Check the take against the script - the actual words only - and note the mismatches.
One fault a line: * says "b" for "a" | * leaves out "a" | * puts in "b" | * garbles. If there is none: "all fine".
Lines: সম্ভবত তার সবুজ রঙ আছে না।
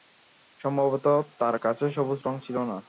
* puts in "কাছে"
* says "ছিল" for "আছে"